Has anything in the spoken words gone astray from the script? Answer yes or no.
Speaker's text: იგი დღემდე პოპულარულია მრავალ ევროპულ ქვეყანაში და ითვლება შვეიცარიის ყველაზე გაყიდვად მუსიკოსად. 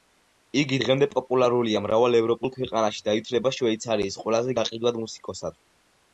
no